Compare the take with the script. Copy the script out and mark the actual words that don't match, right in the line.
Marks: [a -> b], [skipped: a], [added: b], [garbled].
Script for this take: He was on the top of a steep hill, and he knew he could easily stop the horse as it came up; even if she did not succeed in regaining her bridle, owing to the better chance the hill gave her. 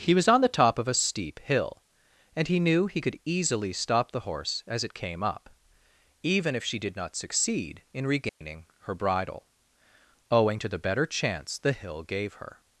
He was on the top of a steep hill, and he knew he could easily stop the horse as it came up; even if she did not succeed in regaining her bridle, owing to the better chance the hill gave her.